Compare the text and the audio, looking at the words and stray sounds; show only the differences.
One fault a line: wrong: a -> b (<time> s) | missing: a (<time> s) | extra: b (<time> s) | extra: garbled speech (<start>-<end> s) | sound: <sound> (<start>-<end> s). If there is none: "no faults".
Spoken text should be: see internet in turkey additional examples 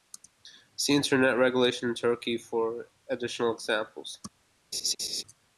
extra: regulation (1.4 s)
extra: for (2.4 s)
sound: laugh (4.7-5.2 s)